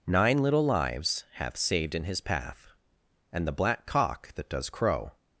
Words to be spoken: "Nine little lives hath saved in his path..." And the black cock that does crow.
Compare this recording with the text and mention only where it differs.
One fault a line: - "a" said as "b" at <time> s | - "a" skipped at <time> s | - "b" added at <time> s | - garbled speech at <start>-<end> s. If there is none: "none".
none